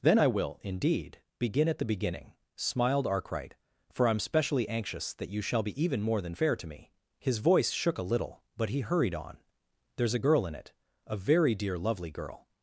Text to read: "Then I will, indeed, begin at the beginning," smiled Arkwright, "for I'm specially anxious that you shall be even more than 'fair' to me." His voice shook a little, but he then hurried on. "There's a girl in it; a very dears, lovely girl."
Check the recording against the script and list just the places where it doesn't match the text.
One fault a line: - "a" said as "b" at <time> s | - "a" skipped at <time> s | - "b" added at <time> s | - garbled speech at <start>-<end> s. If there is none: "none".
- "then" skipped at 8.8 s
- "dears" said as "dear" at 11.5 s